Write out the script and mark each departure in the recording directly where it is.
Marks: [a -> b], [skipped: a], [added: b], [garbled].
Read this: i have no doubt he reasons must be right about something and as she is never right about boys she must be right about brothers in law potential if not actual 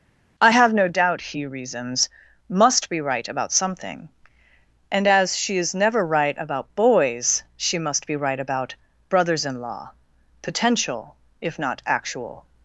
i have no doubt he reasons must be right about something and as she is never right about boys she must be right about brothers in law potential if not actual